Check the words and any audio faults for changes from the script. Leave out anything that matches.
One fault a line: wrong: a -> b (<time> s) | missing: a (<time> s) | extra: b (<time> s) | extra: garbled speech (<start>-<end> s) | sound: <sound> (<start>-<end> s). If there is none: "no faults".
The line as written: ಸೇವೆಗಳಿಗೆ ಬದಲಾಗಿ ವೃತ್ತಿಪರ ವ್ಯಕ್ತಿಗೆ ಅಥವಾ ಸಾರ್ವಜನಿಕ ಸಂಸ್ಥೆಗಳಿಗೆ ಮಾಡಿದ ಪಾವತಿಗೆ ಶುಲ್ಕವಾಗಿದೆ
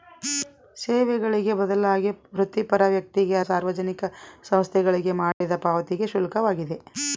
missing: ಅಥವಾ (3.4 s)
sound: dropout (5.3-5.4 s)